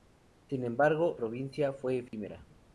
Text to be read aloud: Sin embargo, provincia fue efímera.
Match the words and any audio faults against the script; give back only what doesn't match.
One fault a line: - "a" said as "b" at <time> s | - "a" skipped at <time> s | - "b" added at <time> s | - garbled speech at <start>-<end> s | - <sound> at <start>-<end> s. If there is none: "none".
- dropout at 2.1-2.1 s